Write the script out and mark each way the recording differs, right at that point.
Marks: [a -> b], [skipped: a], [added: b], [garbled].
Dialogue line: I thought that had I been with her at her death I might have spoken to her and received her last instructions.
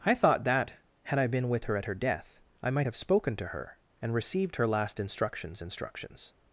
I thought that had I been with her at her death I might have spoken to her and received her last instructions. [added: instructions]